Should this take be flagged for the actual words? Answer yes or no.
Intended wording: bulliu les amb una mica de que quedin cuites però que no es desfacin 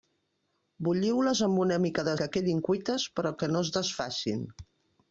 no